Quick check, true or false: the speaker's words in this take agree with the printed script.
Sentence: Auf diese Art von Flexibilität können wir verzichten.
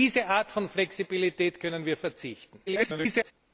false